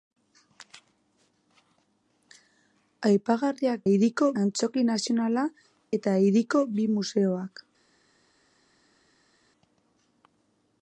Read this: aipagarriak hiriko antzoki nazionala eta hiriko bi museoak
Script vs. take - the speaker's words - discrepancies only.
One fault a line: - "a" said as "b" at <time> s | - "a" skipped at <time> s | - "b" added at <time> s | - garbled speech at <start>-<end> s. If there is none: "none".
none